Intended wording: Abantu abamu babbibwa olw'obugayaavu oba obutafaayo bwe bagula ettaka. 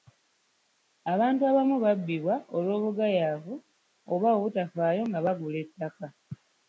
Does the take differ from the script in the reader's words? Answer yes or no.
yes